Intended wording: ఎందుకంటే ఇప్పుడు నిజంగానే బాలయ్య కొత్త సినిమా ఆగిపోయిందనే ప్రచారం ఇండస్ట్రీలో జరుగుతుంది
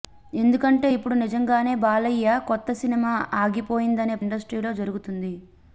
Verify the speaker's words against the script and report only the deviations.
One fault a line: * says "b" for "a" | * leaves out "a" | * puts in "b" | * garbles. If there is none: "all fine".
* leaves out "ప్రచారం"